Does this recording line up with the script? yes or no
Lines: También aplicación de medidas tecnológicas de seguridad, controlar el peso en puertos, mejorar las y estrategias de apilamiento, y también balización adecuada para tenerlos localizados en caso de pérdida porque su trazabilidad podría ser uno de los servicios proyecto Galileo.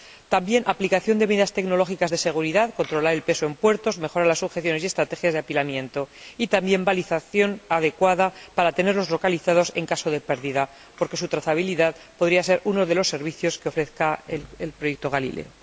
no